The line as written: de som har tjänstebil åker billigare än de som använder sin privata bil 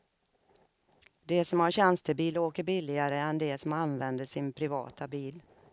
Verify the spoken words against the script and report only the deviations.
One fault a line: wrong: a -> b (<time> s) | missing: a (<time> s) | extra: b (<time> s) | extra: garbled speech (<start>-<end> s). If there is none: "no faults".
no faults